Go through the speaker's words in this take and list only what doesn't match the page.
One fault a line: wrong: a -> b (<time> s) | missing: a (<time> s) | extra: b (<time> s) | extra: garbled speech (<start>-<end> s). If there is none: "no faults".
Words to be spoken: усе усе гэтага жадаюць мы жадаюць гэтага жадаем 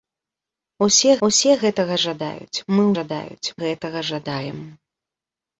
no faults